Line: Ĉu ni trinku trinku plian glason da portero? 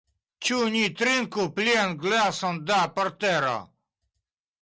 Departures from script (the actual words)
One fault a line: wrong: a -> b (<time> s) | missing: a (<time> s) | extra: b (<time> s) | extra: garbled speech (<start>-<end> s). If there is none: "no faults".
missing: trinku (1.4 s)